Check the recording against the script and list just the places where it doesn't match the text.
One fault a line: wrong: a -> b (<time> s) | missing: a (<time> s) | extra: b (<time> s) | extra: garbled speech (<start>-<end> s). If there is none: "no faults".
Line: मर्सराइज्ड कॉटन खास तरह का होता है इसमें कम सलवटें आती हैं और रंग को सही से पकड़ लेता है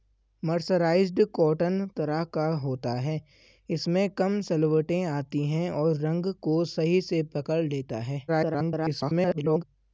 missing: खास (1.9 s)
extra: garbled speech (8.3-9.6 s)